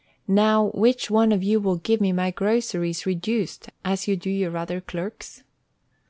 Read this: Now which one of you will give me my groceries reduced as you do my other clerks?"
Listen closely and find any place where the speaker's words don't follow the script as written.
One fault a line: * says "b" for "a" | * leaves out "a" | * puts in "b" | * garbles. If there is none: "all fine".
* says "your" for "my"